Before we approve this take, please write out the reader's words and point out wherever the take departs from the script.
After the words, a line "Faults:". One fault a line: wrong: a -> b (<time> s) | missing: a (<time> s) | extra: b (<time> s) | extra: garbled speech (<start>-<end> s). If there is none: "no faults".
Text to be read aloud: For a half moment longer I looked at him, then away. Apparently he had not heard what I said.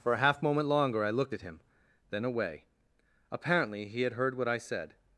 For a half moment longer I looked at him, then away. Apparently he had heard what I said.
Faults:
missing: not (4.1 s)